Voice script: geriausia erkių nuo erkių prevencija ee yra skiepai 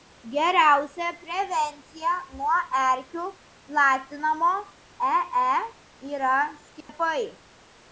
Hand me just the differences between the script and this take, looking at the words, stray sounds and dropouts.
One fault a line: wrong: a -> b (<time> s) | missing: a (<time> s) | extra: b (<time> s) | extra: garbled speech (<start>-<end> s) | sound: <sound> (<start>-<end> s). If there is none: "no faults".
wrong: erkių -> prevencija (1.2 s)
wrong: prevencija -> platinamo (3.7 s)
sound: dropout (6.8-6.9 s)